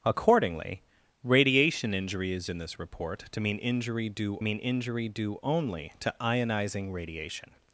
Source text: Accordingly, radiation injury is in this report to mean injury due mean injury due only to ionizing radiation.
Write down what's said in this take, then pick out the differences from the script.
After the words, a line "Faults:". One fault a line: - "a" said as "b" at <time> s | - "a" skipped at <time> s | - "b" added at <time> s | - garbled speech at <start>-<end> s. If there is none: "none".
Accordingly, radiation injury is in this report to mean injury due mean injury due only to ionizing radiation.
Faults:
none